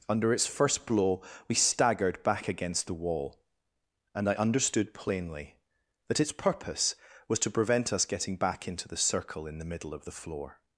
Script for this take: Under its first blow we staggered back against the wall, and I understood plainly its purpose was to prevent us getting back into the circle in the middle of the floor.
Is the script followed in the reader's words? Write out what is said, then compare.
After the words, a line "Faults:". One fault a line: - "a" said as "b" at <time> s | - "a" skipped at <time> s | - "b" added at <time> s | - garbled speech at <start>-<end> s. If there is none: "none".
Under its first blow we staggered back against the wall, and I understood plainly that its purpose was to prevent us getting back into the circle in the middle of the floor.
Faults:
- "that" added at 6.1 s